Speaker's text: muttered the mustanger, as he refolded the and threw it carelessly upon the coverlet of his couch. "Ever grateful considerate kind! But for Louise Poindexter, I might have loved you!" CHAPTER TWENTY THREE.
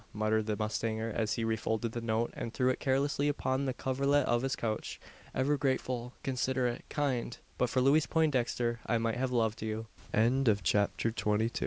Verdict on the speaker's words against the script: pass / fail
fail